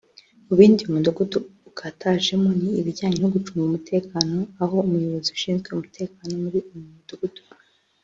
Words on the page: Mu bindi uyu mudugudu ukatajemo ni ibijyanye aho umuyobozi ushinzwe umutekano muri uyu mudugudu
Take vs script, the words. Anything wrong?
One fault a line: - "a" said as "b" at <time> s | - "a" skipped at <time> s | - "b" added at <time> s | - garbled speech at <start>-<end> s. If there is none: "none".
- "no gucunga umutekano" added at 3.2 s